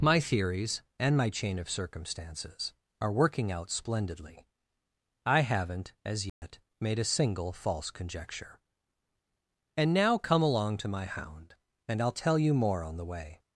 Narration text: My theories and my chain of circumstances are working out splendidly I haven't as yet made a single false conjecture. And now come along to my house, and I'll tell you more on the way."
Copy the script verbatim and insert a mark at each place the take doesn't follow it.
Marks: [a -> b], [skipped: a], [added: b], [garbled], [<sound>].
My theories and my chain of circumstances are working out splendidly I haven't as yet [dropout] made a single false conjecture. And now come along to my [house, -> hound] and I'll tell you more on the way."